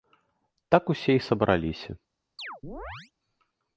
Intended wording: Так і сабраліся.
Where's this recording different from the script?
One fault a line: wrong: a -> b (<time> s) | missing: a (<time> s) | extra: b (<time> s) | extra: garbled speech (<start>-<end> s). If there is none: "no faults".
extra: усе (0.9 s)